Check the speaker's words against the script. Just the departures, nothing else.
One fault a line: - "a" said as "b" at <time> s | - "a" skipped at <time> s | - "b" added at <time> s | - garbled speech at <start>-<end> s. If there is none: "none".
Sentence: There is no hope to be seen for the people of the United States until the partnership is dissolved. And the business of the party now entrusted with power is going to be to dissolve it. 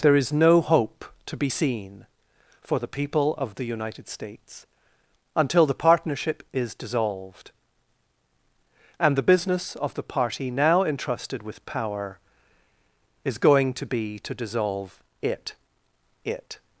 - "it" added at 16.3 s